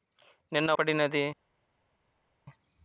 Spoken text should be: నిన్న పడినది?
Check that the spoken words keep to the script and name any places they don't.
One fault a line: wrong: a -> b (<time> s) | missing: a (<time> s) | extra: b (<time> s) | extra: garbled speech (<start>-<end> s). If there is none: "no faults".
no faults